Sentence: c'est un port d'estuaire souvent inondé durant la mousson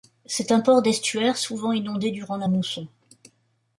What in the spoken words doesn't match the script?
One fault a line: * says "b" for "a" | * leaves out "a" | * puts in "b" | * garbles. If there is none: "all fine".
all fine